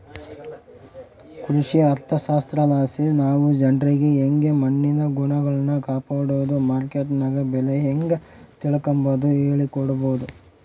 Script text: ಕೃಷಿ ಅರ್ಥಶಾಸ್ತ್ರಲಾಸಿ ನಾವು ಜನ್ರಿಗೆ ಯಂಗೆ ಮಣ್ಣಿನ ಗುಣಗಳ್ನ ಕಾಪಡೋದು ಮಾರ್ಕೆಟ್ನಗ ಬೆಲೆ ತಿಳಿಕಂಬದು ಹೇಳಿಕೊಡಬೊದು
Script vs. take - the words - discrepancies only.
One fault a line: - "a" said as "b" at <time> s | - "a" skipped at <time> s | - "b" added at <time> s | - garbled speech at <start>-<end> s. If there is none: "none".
- "ಹೇಂಗ" added at 7.8 s